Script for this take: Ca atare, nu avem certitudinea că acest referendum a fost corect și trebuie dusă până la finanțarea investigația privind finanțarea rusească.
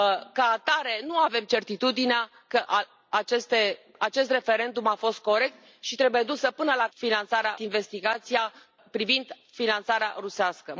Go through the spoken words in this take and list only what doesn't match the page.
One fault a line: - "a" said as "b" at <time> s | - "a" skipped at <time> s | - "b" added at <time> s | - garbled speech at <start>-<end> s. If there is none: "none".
none